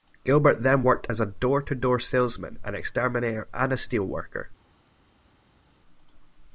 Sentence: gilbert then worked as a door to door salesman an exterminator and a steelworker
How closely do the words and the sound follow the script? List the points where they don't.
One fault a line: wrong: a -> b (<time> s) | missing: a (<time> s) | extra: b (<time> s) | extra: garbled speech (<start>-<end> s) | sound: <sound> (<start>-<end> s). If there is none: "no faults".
no faults